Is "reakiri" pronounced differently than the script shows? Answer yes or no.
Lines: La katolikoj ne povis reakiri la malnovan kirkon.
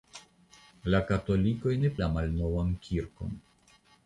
yes